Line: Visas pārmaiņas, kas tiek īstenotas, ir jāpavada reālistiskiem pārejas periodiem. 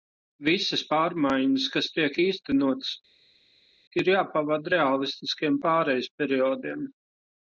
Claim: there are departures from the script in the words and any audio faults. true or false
false